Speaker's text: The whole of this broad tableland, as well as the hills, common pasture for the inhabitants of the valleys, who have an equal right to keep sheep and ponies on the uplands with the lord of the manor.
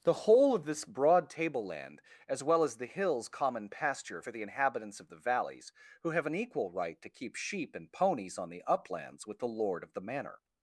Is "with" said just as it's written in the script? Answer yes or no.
yes